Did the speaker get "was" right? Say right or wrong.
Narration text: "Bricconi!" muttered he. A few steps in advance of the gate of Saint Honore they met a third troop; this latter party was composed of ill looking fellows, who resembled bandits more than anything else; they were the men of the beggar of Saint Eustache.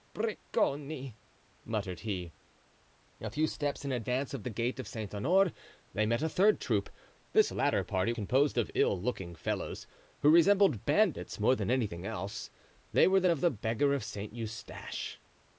wrong